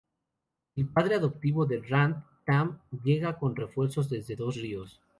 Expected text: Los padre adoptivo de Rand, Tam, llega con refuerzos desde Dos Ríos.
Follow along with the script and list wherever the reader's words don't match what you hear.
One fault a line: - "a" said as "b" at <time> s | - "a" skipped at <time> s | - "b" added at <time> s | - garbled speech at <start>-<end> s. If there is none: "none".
- "Los" said as "El" at 0.8 s